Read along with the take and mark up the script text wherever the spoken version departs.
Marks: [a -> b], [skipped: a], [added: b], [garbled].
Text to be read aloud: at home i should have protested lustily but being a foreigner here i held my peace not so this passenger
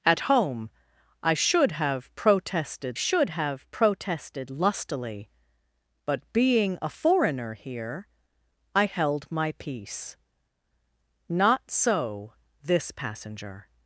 at home i should have protested [added: should have protested] lustily but being a foreigner here i held my peace not so this passenger